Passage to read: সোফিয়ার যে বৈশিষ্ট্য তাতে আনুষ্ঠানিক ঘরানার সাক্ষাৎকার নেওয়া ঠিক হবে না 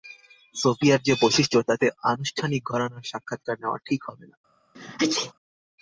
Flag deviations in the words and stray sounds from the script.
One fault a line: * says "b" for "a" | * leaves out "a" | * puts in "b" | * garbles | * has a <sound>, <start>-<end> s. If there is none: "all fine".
* has a sneeze, 4.7-5.3 s